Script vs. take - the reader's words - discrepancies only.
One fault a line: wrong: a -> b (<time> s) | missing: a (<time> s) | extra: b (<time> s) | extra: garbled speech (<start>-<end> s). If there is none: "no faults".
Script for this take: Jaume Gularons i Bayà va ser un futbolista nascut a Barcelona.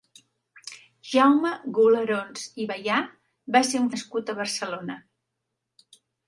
missing: futbolista (3.9 s)